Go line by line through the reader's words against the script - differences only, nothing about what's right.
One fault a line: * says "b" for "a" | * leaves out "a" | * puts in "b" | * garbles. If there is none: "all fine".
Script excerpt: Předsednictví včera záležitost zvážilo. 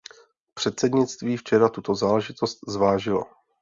* puts in "tuto"